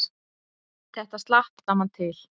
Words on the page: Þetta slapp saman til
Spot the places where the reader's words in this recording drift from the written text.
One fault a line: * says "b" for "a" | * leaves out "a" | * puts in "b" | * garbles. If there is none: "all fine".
all fine